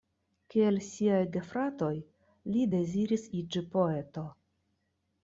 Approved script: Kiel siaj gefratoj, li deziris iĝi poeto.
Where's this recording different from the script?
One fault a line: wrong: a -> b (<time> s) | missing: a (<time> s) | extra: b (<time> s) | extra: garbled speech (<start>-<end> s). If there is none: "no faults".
no faults